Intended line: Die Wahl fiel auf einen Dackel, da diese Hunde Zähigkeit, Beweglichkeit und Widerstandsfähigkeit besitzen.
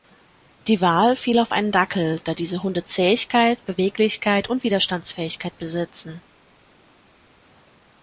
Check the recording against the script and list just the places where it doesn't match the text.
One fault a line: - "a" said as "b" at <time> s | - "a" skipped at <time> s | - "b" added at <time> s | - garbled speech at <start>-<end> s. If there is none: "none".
none